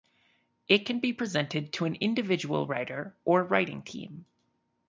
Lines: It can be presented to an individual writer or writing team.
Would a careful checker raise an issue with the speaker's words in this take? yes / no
no